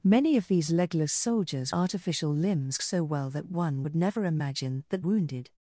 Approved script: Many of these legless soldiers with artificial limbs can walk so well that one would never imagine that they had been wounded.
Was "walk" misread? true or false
true